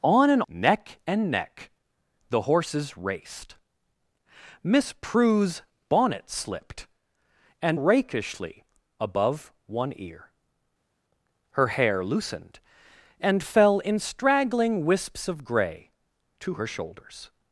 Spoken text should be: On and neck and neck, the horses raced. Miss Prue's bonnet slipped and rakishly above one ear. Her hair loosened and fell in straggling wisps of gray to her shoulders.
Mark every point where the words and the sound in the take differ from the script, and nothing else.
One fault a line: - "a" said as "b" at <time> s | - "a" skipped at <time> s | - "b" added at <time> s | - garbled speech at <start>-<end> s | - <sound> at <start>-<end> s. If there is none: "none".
none